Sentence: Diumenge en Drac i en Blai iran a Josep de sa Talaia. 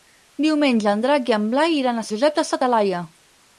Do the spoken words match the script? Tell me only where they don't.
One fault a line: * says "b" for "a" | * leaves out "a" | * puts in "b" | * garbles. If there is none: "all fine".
all fine